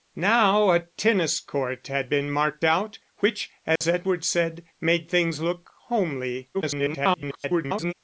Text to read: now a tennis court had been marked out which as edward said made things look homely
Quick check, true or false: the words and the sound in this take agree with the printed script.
false